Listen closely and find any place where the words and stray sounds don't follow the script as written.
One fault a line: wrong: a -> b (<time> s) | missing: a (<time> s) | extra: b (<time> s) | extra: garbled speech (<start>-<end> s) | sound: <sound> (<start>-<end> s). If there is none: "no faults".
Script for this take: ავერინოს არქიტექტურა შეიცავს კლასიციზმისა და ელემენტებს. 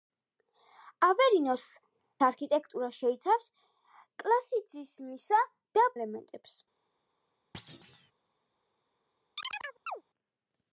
sound: thud (7.5-8.1 s)
sound: chirp (9.4-10.0 s)